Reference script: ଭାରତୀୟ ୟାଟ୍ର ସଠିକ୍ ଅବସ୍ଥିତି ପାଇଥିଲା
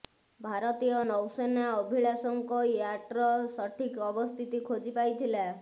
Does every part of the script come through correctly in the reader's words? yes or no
no